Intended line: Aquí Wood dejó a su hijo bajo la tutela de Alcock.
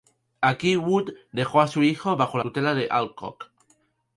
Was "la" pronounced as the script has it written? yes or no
no